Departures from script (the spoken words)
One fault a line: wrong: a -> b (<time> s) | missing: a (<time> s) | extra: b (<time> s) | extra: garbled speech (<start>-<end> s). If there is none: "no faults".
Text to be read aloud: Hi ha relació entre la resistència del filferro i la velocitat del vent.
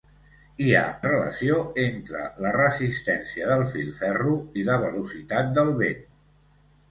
no faults